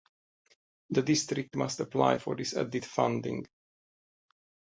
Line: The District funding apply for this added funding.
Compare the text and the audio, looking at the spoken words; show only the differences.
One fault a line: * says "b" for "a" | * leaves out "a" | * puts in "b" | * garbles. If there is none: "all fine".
* says "must" for "funding"